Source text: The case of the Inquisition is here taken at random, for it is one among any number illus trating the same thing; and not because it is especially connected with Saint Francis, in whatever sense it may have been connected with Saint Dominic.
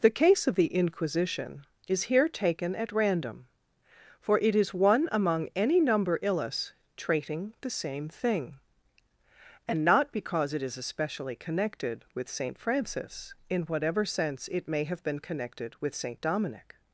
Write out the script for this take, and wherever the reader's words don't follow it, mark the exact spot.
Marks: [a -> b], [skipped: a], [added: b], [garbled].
The case of the Inquisition is here taken at random, for it is one among any number illus trating the same thing; and not because it is especially connected with Saint Francis, in whatever sense it may have been connected with Saint Dominic.